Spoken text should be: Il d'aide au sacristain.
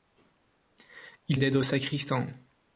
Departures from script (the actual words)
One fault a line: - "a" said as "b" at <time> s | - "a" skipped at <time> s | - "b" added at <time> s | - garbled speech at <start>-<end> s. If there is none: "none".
none